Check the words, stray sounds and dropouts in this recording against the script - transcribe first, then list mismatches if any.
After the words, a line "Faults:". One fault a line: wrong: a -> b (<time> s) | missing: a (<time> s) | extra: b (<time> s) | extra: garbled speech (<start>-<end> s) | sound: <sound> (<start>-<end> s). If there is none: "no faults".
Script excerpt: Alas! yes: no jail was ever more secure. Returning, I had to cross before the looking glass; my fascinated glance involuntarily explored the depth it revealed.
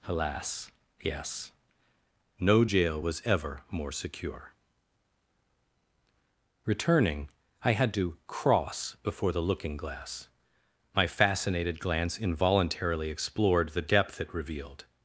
Alas! yes: no jail was ever more secure. Returning, I had to cross before the looking glass; my fascinated glance involuntarily explored the depth it revealed.
Faults:
no faults